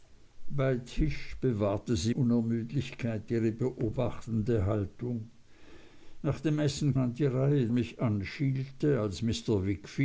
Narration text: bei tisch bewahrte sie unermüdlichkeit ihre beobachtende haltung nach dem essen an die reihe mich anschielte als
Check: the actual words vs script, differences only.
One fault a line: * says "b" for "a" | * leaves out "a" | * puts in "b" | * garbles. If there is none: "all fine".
all fine